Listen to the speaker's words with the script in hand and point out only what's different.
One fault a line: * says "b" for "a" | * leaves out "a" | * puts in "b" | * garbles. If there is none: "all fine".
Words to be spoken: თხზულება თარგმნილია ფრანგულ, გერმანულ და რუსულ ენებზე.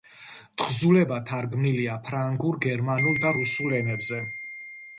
all fine